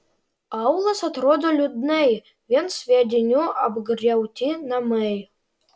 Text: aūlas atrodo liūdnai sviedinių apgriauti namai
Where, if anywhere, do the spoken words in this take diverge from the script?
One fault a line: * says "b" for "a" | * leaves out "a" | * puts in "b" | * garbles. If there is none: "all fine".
* puts in "vien"